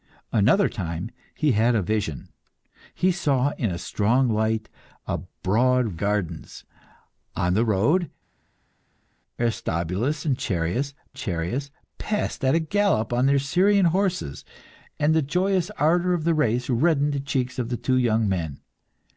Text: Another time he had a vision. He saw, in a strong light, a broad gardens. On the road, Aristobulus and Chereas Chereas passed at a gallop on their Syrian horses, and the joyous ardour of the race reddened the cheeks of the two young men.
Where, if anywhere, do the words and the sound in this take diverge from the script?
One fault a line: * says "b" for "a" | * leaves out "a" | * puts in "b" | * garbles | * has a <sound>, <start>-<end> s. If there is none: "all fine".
all fine